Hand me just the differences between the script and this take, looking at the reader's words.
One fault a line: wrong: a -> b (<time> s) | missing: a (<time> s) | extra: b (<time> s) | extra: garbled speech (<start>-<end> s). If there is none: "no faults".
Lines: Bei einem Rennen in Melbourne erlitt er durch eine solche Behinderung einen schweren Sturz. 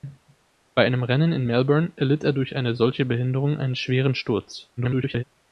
extra: garbled speech (4.8-5.2 s)